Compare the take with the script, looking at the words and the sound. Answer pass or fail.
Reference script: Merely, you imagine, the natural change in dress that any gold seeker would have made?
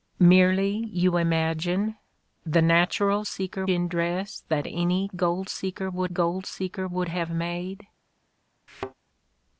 fail